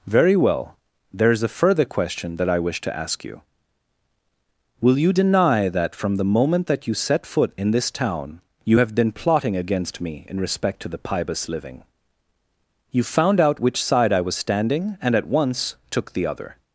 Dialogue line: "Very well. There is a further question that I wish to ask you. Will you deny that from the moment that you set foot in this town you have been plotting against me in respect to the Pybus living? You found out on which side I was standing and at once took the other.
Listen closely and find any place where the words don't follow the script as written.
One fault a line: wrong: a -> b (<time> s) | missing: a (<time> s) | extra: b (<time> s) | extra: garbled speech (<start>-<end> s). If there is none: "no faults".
missing: on (13.6 s)